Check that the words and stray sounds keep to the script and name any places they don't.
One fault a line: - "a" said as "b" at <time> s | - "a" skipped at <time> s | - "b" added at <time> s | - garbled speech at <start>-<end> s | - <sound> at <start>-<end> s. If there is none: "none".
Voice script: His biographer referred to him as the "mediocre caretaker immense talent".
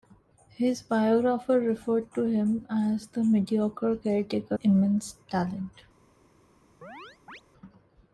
- chirp at 6.8-7.4 s